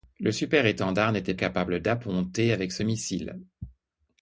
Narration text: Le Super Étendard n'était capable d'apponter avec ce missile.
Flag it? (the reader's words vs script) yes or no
no